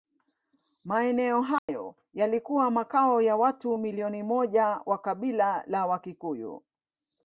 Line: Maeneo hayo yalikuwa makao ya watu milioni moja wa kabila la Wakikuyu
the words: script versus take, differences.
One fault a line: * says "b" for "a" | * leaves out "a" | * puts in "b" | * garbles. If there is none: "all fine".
all fine